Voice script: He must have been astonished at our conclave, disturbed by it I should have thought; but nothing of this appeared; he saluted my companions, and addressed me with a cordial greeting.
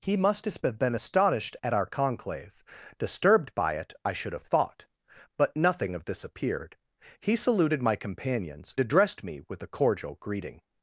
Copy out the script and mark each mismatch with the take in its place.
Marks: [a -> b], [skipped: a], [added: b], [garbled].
He must have been astonished at our conclave, disturbed by it I should have thought; but nothing of this appeared; he saluted my companions, [skipped: and] addressed me with a cordial greeting.